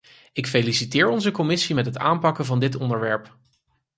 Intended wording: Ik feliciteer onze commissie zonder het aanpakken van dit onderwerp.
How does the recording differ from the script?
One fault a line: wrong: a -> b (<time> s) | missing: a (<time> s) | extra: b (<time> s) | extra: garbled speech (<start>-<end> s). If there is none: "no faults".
wrong: zonder -> met (1.7 s)